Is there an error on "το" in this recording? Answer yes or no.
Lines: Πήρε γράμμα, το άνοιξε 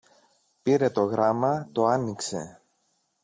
no